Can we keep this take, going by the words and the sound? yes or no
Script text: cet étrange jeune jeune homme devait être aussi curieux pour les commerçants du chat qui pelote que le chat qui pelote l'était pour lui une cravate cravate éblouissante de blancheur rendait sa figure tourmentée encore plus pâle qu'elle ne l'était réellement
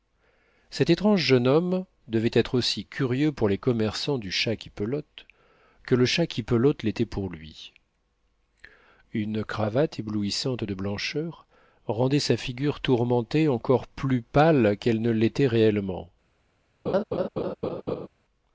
no